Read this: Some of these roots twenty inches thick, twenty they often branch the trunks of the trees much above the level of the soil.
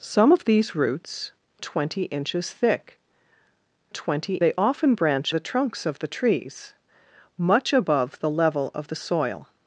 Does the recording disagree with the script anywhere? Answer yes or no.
no